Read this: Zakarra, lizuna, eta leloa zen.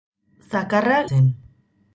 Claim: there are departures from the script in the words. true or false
true